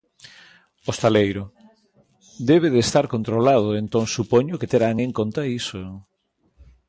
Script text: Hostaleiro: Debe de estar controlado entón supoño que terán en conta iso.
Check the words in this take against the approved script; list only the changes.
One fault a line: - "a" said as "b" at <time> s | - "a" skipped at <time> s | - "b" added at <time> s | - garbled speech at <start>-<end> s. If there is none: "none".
none